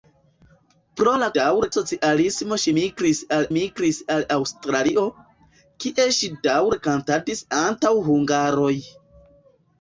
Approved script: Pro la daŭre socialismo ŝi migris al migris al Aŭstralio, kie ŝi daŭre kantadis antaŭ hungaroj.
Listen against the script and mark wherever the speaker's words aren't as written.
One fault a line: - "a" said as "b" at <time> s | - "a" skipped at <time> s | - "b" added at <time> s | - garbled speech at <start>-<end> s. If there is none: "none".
none